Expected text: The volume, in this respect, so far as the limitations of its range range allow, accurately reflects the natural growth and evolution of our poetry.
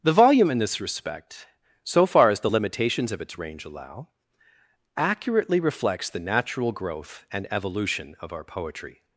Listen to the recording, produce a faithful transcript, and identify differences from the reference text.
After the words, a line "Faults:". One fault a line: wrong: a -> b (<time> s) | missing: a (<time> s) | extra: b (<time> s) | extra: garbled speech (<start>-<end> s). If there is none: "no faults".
The volume, in this respect, so far as the limitations of its range allow, accurately reflects the natural growth and evolution of our poetry.
Faults:
missing: range (3.7 s)